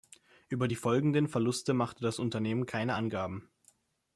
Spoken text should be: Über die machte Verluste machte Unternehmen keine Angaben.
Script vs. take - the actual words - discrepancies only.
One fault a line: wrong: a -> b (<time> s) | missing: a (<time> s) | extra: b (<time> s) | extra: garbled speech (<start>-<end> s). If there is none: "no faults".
wrong: machte -> folgenden (0.8 s)
extra: das (2.0 s)